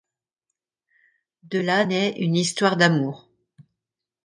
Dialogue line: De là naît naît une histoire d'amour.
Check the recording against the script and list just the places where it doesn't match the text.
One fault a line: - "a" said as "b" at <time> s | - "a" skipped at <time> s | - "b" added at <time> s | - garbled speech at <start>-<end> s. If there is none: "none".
- "naît" skipped at 2.1 s